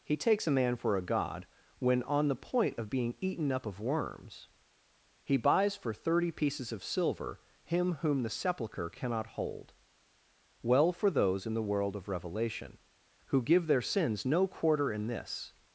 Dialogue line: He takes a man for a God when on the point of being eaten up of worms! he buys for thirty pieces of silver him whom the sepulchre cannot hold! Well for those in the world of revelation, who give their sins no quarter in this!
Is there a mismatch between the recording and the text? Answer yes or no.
no